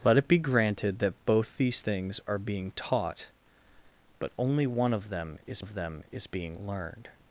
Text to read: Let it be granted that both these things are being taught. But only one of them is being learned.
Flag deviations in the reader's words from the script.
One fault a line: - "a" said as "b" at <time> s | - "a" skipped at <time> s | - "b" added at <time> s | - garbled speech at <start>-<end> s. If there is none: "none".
- "of them is" added at 5.6 s